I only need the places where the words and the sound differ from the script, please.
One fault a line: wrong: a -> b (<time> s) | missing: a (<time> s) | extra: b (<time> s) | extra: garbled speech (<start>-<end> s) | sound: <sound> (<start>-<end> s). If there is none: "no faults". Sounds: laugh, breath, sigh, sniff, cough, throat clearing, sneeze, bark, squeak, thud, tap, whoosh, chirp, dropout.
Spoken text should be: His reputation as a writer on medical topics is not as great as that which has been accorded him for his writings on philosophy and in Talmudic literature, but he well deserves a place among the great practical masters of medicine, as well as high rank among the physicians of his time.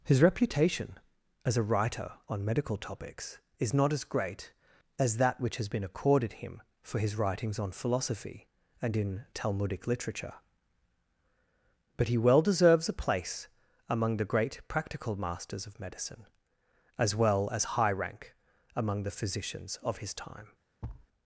sound: thud (20.8-21.1 s)